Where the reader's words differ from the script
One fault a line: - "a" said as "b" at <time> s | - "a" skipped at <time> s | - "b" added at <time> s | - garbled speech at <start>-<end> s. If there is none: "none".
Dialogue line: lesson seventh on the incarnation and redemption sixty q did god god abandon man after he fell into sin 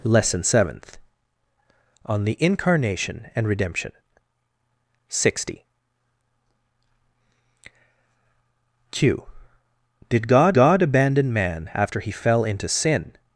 none